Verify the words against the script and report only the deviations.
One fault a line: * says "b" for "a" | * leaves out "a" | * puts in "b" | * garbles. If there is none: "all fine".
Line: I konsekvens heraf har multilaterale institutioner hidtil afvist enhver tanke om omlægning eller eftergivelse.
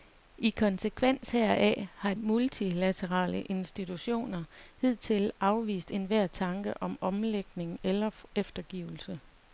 all fine